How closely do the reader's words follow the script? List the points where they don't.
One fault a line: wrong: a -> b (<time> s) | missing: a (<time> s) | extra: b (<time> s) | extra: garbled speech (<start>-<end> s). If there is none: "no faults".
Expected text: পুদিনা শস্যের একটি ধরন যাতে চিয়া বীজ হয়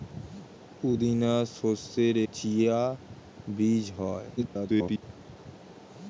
missing: একটি ধরন যাতে (2.1 s)
extra: garbled speech (4.4-5.0 s)